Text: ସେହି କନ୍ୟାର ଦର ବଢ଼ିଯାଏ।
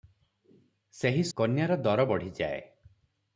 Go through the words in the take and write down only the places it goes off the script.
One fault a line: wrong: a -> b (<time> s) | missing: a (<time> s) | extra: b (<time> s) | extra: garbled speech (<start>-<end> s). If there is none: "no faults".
no faults